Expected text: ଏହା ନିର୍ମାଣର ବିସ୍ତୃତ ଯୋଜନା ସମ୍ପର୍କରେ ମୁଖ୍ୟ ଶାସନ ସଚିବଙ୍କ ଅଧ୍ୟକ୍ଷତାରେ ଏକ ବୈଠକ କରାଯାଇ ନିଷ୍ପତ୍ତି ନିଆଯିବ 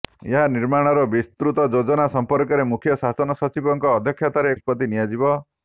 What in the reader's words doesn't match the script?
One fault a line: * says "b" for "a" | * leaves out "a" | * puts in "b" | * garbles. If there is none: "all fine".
* leaves out "ଏକ ବୈଠକ କରାଯାଇ"